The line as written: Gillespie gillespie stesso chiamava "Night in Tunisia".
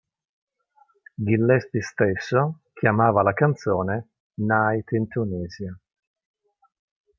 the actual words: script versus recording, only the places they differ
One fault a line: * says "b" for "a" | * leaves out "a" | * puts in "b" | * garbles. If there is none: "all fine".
* leaves out "gillespie"
* puts in "la canzone"